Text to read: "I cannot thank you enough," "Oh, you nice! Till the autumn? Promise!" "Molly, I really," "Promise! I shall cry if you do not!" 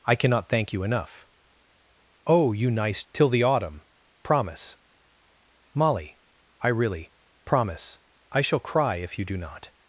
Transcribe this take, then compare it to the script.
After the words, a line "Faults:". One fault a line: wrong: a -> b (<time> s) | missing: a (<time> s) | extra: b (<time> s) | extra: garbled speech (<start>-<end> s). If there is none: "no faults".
"I cannot thank you enough," "Oh, you nice! Till the autumn? Promise!" "Molly, I really," "Promise! I shall cry if you do not!"
Faults:
no faults